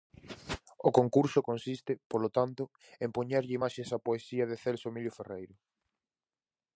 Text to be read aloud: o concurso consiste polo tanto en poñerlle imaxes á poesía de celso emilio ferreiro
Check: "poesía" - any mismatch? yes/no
no